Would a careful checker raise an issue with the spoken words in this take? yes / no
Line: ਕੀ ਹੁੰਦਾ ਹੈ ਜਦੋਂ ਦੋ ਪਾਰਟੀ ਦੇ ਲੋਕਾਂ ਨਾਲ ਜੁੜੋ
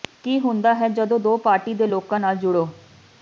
no